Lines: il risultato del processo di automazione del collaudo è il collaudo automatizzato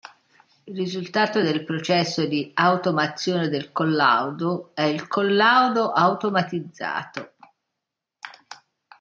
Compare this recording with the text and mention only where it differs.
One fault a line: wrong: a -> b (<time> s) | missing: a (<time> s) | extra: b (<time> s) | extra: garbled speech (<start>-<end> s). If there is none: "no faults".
no faults